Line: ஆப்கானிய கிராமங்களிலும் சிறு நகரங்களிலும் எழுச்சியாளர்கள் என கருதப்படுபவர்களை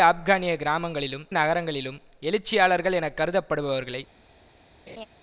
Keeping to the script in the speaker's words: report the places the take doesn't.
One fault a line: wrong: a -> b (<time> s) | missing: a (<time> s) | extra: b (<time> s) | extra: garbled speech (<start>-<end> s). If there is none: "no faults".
missing: சிறு (1.3 s)